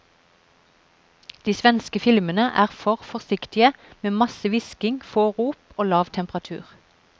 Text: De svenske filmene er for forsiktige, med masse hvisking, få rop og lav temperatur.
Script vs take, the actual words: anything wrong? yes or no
no